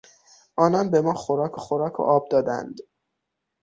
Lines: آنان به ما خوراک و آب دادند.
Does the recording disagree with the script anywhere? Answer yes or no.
yes